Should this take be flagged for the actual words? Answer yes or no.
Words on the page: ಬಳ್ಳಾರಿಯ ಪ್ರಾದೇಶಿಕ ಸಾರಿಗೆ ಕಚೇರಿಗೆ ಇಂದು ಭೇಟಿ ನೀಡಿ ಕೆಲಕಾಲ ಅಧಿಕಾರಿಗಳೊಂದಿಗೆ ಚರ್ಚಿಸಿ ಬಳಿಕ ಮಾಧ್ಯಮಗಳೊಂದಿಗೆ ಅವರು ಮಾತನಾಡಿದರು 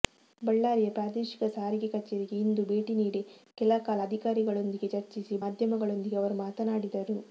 yes